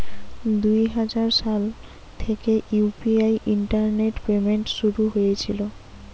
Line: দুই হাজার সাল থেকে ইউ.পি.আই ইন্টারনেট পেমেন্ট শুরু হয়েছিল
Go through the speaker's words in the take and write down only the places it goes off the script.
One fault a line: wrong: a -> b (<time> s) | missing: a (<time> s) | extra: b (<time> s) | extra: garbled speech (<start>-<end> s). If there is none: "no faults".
no faults